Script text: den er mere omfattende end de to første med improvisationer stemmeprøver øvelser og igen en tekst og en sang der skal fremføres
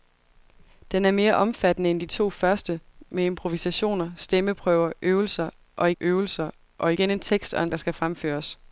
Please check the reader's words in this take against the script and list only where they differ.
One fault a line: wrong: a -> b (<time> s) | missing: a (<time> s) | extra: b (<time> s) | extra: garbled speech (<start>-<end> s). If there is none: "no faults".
extra: øvelser og (6.0 s)
missing: sang (7.7 s)